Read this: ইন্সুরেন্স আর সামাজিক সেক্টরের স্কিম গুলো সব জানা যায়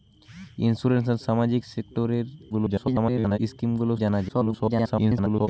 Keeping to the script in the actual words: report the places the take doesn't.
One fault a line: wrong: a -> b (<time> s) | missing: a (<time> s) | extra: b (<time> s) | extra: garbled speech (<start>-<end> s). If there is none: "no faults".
extra: garbled speech (2.5-3.4 s)
missing: সব (3.9 s)
extra: garbled speech (4.3-5.5 s)